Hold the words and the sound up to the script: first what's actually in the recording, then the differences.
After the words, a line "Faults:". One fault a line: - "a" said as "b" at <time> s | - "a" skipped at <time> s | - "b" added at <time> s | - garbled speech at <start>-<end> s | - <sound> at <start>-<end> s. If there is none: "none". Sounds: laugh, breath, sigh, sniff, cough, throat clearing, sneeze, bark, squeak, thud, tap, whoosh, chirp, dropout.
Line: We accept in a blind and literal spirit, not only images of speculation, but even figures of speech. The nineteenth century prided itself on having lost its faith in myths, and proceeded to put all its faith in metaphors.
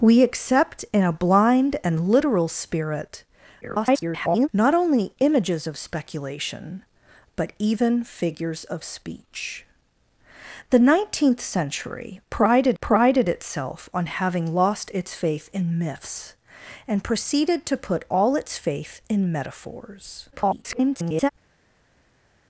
We accept in a blind and literal spirit, [garbled] not only images of speculation, but even figures of speech. The nineteenth century prided prided itself on having lost its faith in myths, and proceeded to put all its faith in metaphors. [garbled]
Faults:
- garbled speech at 3.6-4.5 s
- "prided" added at 12.8 s
- garbled speech at 20.3-21.3 s